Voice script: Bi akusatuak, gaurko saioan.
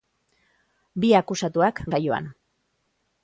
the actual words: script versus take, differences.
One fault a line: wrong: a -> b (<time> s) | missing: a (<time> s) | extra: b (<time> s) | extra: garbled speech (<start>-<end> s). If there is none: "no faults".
missing: gaurko (1.8 s)